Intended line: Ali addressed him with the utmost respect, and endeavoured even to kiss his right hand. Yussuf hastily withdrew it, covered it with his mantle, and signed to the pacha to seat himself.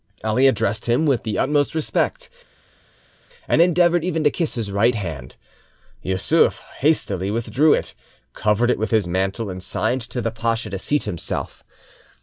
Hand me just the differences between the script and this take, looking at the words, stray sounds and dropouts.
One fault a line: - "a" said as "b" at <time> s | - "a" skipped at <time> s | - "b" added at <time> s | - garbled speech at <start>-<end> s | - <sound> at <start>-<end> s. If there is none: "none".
none